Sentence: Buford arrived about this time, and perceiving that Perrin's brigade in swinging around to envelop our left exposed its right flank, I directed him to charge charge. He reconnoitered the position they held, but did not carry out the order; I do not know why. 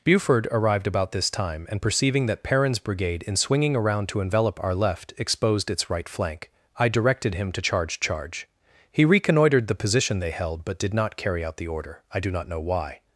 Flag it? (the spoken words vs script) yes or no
no